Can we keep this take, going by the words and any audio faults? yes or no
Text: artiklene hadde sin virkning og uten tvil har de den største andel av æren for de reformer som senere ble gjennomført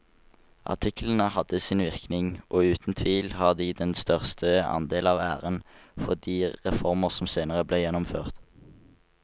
yes